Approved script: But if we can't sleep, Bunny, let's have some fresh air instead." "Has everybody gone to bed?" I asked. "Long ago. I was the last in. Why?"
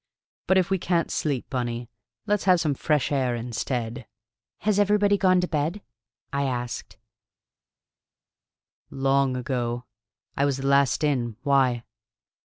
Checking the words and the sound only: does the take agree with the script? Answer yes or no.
yes